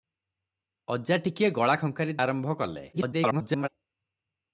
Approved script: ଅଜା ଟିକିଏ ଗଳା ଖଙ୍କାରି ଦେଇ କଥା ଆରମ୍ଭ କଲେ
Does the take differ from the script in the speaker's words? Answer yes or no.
yes